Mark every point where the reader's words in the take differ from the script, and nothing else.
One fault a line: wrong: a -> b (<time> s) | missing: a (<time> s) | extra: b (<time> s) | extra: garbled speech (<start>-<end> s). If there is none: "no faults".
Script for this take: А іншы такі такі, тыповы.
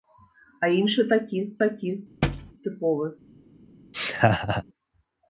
no faults